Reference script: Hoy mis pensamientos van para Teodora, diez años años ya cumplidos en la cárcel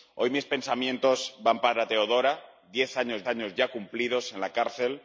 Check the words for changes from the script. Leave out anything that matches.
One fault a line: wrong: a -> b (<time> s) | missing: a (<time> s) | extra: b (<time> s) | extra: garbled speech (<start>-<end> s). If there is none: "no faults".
no faults